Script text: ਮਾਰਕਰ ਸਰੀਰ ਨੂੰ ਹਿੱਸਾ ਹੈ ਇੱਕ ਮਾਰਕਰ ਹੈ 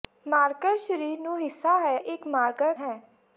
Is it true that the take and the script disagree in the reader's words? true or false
false